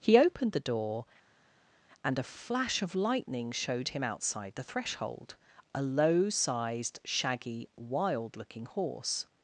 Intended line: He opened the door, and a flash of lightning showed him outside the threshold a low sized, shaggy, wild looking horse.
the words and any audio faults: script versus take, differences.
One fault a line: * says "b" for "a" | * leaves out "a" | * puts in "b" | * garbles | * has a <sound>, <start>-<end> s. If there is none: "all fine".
all fine